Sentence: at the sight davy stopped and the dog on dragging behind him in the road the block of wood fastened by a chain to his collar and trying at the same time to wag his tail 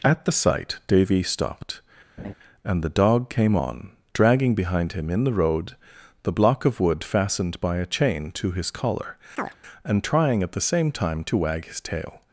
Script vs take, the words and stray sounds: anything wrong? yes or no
yes